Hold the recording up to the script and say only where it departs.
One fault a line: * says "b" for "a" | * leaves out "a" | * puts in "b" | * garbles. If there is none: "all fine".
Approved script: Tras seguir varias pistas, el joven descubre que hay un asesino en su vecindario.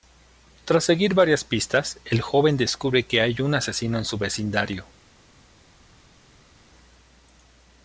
all fine